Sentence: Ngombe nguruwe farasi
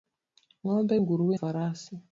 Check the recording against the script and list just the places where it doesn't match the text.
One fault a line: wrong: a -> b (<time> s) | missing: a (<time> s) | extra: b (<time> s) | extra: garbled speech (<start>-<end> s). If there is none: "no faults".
no faults